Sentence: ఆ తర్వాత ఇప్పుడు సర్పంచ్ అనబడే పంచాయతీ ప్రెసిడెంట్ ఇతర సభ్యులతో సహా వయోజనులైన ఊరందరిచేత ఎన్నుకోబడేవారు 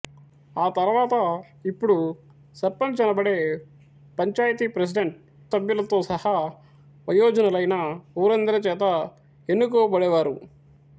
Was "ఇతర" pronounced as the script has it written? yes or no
no